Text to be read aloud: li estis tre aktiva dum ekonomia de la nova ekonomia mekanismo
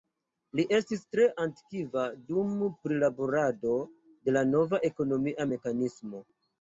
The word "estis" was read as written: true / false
true